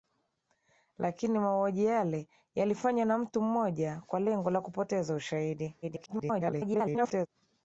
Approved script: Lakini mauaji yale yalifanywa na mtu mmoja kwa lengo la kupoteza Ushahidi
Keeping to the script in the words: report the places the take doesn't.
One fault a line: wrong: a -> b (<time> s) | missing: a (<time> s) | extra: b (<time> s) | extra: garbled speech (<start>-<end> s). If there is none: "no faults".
extra: garbled speech (5.8-7.3 s)